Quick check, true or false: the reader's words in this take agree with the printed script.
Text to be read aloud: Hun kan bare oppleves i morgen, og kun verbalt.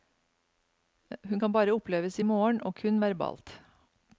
true